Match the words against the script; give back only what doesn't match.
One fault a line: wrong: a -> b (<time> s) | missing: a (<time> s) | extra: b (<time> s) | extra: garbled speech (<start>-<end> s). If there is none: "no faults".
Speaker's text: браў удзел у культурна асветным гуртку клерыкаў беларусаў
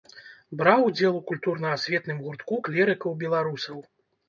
no faults